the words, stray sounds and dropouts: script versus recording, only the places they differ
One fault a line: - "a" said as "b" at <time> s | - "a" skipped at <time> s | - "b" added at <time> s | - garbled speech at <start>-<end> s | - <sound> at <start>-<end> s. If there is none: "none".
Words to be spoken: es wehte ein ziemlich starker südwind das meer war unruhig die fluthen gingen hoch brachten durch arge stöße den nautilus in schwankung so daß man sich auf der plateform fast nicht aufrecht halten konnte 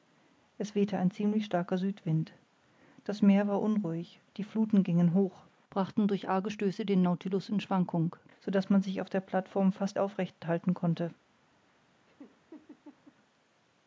- "nicht" skipped at 10.0 s
- laugh at 12.1-13.2 s